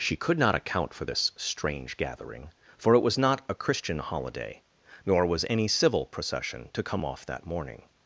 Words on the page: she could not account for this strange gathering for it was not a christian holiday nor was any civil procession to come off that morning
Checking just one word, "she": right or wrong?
right